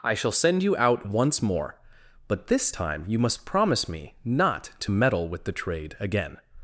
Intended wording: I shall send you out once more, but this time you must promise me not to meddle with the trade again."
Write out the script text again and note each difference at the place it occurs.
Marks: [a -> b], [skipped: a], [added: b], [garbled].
I shall send you out once more, but this time you must promise me not to meddle with the trade again."